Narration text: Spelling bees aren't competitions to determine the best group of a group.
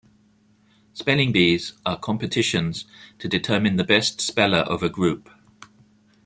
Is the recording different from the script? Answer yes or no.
yes